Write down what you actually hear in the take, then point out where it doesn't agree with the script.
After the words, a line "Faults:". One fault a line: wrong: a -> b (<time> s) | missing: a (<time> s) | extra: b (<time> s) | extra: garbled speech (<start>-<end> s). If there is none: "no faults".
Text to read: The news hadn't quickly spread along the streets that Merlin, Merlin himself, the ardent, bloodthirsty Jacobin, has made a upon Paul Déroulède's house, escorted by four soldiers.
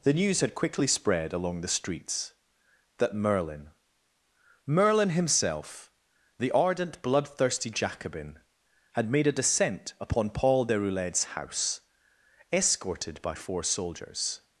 The news had quickly spread along the streets that Merlin, Merlin himself, the ardent, bloodthirsty Jacobin, had made a descent upon Paul Déroulède's house, escorted by four soldiers.
Faults:
wrong: hadn't -> had (0.4 s)
wrong: has -> had (8.9 s)
extra: descent (9.3 s)